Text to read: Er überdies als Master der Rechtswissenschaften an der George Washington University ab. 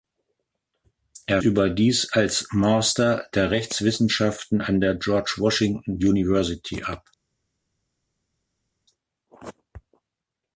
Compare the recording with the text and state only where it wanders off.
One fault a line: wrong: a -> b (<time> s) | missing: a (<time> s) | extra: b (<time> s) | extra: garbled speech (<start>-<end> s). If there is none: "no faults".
no faults